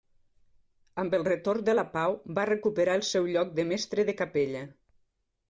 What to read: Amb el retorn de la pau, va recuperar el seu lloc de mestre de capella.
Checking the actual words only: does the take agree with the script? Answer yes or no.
yes